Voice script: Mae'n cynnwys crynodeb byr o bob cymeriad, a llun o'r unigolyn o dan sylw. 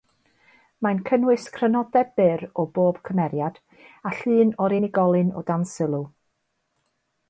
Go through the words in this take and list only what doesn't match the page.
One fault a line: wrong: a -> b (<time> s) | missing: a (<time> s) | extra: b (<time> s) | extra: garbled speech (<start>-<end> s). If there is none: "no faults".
no faults